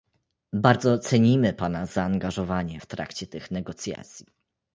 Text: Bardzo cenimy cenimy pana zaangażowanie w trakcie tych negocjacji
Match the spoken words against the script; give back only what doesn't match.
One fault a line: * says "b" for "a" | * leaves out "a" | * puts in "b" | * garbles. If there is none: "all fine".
* leaves out "cenimy"